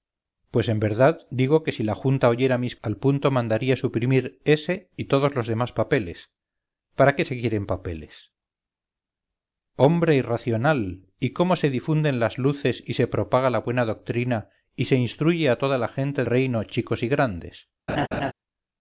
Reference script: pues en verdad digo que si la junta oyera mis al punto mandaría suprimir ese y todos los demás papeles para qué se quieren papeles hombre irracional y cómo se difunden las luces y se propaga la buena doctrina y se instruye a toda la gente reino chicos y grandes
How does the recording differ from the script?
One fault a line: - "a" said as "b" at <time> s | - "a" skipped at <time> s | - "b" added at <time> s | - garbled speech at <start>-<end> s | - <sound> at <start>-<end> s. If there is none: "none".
- laugh at 17.9-18.3 s